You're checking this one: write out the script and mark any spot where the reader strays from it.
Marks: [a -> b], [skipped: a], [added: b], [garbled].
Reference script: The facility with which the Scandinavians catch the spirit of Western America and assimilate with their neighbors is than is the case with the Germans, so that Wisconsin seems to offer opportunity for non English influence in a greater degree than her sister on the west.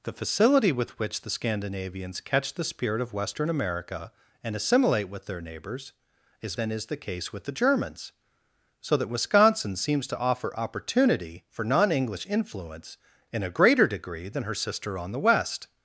The facility with which the Scandinavians catch the spirit of Western America and assimilate with their neighbors is than is the case with the Germans, so that Wisconsin seems to offer opportunity for non English influence in a greater degree than her sister on the west.